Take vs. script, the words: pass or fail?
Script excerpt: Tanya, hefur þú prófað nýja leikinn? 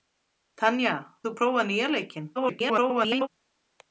fail